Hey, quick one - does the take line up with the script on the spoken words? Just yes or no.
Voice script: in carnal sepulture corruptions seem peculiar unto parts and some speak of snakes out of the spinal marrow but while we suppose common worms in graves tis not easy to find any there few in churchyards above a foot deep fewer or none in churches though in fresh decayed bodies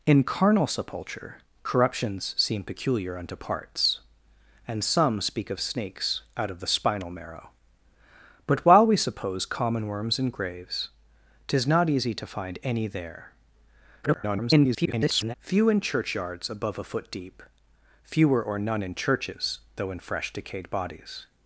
no